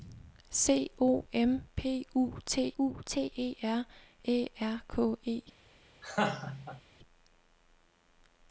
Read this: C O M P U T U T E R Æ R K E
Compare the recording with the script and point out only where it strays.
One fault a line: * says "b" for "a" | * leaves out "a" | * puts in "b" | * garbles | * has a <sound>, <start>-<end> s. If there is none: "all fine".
* has a laugh, 6.0-6.8 s